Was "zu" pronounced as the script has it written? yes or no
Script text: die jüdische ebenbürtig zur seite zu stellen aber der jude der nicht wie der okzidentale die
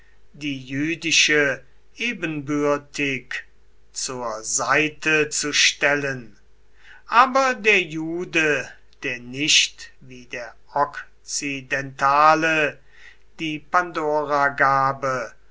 yes